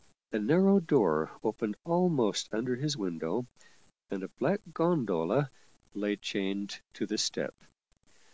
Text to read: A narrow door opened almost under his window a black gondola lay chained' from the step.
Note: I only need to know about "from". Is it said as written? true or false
false